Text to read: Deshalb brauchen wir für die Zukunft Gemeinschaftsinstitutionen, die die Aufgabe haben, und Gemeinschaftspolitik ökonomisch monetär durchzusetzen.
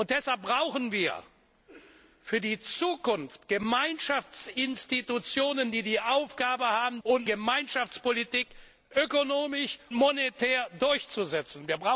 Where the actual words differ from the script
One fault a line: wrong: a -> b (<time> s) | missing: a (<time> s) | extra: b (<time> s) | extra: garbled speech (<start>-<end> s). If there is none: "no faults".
no faults